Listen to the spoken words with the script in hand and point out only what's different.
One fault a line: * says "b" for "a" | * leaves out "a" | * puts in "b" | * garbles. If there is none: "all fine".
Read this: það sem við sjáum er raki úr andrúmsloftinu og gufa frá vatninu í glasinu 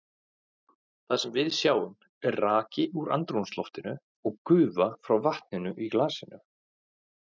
all fine